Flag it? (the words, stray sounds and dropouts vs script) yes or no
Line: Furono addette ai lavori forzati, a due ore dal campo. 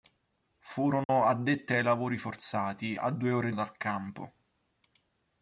yes